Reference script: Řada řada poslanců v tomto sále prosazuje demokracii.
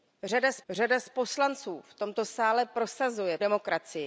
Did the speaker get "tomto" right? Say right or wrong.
right